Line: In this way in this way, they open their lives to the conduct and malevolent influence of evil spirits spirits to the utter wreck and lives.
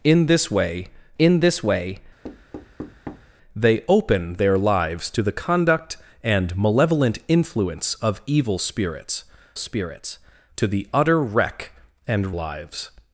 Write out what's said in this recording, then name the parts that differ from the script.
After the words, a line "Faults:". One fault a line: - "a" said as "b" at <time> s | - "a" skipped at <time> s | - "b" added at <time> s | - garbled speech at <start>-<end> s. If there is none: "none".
In this way in this way, they open their lives to the conduct and malevolent influence of evil spirits spirits to the utter wreck and lives.
Faults:
none